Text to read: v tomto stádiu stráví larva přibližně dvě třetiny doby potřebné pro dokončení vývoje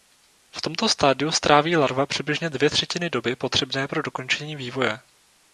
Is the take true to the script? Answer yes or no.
yes